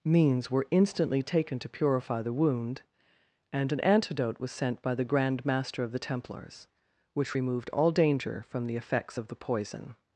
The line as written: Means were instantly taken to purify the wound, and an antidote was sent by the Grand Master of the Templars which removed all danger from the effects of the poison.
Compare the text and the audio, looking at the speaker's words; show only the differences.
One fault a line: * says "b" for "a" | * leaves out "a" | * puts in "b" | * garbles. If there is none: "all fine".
all fine